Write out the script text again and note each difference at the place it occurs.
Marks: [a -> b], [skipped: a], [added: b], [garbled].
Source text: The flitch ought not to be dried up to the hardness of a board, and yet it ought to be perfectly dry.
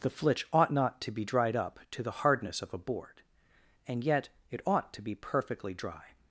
The flitch ought not to be dried up to the hardness of a board, and yet it ought to be perfectly dry.